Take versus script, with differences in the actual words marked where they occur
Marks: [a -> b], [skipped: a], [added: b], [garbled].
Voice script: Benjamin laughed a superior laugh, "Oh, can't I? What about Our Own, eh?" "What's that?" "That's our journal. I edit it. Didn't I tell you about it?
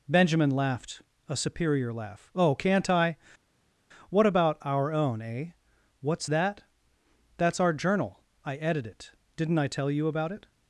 Benjamin laughed a superior laugh, "Oh, can't I? What about Our Own, eh?" "What's that?" "That's our journal. I edit it. Didn't I tell you about it?